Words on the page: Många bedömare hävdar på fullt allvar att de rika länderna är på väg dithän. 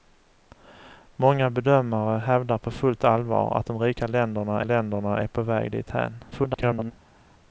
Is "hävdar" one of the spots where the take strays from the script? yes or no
no